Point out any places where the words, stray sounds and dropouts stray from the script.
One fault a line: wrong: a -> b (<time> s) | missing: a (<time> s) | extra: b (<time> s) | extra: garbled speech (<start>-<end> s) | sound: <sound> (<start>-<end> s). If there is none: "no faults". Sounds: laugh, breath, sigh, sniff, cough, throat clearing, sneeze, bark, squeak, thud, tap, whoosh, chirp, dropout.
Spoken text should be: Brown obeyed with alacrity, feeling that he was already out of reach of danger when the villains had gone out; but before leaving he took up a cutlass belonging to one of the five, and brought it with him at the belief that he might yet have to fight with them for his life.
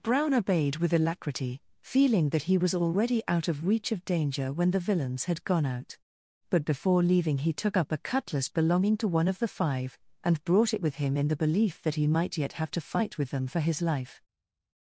wrong: at -> in (11.2 s)